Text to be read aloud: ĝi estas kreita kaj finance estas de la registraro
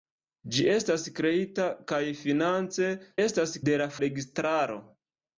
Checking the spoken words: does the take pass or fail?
pass